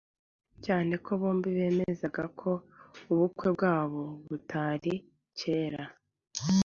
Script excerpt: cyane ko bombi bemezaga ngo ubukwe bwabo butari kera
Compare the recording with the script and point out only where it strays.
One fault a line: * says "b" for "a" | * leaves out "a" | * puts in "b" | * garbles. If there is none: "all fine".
* says "ko" for "ngo"